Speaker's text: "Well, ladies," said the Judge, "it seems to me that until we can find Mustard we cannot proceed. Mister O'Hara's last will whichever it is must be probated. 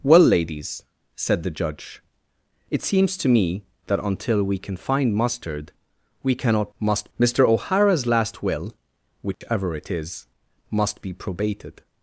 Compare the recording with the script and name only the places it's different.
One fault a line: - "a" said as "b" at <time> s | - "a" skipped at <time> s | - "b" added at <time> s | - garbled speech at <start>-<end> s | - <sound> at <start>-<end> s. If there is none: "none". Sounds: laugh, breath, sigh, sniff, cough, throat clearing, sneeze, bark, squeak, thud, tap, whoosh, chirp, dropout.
- "proceed" said as "must" at 6.8 s
- dropout at 9.3-9.4 s